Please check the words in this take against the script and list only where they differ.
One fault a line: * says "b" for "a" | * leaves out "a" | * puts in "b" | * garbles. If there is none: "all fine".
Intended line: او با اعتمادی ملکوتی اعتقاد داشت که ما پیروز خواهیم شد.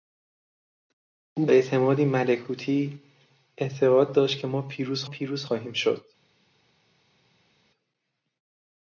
* leaves out "با"
* puts in "پیروز"